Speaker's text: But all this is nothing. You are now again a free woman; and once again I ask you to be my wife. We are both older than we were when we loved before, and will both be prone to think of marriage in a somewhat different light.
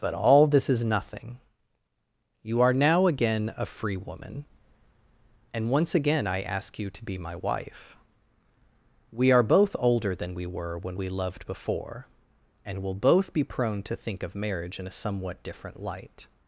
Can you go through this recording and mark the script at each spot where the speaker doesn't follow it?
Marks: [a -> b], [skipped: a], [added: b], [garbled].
But all this is nothing. You are now again a free woman; and once again I ask you to be my wife. We are both older than we were when we loved before, and will both be prone to think of marriage in a somewhat different light.